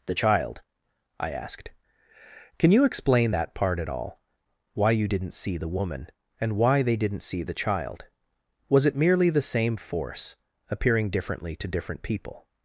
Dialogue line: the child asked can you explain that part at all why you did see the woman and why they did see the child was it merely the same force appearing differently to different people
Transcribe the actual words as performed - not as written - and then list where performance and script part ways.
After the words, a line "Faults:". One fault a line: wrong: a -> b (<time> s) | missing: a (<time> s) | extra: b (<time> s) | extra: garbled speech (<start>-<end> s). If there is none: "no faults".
the child i asked can you explain that part at all why you didn't see the woman and why they didn't see the child was it merely the same force appearing differently to different people
Faults:
extra: i (1.2 s)
wrong: did -> didn't (5.1 s)
wrong: did -> didn't (7.0 s)